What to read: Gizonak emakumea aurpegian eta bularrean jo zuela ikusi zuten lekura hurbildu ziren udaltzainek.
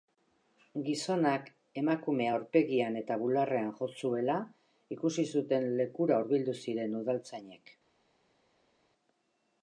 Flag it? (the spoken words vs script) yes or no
no